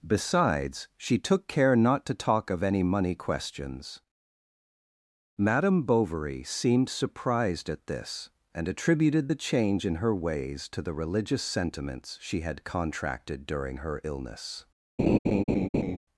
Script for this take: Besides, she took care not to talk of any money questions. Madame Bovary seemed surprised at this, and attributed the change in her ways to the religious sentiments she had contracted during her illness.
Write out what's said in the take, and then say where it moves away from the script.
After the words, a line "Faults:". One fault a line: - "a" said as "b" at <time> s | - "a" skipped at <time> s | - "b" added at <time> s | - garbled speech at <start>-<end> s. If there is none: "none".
Besides, she took care not to talk of any money questions. Madame Bovary seemed surprised at this, and attributed the change in her ways to the religious sentiments she had contracted during her illness.
Faults:
none